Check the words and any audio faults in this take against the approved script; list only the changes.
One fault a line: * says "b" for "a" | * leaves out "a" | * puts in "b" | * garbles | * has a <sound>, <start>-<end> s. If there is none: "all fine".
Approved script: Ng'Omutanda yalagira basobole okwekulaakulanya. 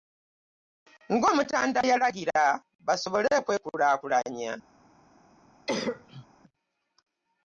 * has a cough, 5.7-6.3 s